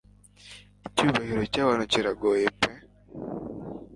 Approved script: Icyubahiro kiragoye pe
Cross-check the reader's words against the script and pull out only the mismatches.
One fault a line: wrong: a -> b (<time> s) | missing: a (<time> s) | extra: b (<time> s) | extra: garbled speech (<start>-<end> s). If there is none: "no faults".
extra: cyabantu (1.5 s)